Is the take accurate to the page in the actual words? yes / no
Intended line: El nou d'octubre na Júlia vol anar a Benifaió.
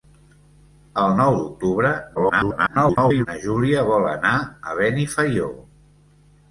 no